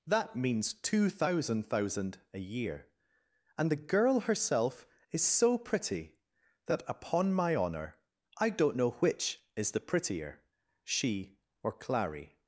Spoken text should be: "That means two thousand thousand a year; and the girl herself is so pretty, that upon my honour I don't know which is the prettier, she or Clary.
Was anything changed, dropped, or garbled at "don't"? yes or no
no